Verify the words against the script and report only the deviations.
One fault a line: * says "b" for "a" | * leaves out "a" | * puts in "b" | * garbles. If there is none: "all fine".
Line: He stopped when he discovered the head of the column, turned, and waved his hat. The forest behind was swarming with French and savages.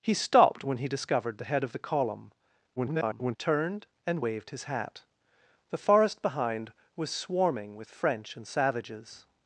* garbles